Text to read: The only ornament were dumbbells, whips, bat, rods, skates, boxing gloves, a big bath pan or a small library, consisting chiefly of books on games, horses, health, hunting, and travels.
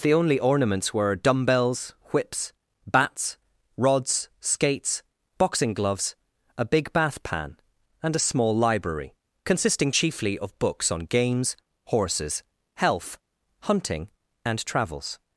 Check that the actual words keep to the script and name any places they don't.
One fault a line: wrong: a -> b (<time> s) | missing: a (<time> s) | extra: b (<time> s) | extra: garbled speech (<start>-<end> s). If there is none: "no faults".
wrong: ornament -> ornaments (0.4 s)
wrong: bat -> bats (2.9 s)
wrong: or -> and (8.0 s)